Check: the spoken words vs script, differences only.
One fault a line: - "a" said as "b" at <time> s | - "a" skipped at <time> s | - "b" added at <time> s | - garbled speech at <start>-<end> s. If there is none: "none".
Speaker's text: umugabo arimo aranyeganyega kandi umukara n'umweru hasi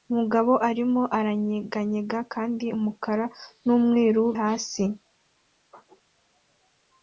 none